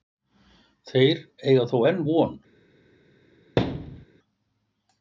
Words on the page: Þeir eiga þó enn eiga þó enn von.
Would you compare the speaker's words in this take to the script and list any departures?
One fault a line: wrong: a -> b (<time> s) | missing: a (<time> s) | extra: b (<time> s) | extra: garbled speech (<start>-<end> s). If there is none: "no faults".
missing: eiga þó enn (2.0 s)